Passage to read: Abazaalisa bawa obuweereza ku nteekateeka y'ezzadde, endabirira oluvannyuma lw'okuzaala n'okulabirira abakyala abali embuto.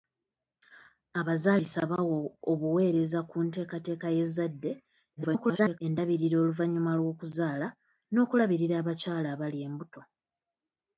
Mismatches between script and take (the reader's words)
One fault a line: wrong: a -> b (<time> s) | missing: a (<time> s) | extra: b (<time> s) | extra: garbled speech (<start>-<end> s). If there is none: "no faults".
extra: garbled speech (5.2-5.8 s)